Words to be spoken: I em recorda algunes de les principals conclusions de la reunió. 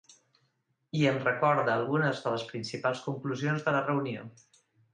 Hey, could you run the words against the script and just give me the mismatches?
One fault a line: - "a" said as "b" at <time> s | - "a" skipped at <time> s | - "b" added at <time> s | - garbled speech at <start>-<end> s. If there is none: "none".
none